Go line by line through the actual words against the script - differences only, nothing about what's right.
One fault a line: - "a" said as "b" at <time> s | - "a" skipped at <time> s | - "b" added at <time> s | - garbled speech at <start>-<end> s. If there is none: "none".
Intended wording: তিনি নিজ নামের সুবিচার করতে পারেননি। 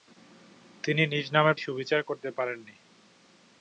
none